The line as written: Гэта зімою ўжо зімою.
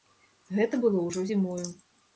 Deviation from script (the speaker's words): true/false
true